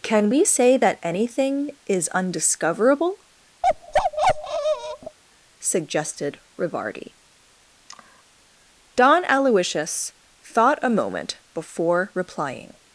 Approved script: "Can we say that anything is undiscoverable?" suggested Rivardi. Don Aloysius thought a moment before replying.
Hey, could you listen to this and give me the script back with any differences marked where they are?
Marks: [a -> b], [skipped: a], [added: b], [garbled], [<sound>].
"Can we say that anything is undiscoverable?" [bark] suggested Rivardi. [sigh] Don Aloysius thought a moment before replying.